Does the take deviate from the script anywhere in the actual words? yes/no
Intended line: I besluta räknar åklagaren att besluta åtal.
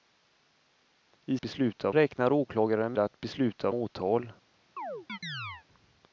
no